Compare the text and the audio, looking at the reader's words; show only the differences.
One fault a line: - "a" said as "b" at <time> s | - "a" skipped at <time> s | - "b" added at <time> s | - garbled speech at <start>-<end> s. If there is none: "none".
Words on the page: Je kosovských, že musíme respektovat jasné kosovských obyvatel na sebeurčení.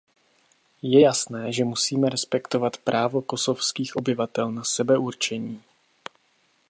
- "kosovských" said as "jasné" at 1.0 s
- "jasné" said as "právo" at 2.8 s